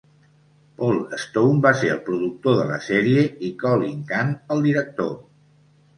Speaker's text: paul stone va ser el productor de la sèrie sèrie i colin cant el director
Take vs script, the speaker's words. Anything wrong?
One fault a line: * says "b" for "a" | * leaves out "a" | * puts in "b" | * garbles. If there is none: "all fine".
* leaves out "sèrie"